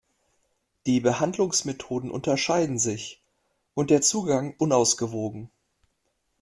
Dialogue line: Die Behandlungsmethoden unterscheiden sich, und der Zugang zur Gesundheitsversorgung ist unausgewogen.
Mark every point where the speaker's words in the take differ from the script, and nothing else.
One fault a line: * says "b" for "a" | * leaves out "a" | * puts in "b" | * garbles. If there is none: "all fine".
* leaves out "zur Gesundheitsversorgung ist"